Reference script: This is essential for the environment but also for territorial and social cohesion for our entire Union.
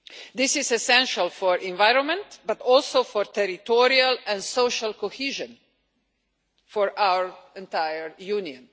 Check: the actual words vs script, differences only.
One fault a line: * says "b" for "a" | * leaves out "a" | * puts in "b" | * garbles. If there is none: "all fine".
all fine